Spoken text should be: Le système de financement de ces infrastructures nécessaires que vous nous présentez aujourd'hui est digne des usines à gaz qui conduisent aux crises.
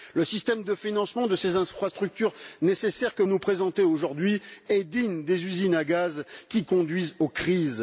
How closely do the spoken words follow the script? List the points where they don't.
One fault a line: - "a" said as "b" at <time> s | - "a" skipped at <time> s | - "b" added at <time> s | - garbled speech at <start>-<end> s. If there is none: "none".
- "vous" skipped at 3.2 s